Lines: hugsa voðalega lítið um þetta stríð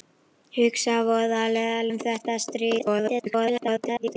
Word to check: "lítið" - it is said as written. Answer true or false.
false